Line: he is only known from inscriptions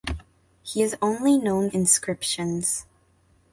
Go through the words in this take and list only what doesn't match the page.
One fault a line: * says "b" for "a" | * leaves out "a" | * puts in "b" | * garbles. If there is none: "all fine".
* leaves out "from"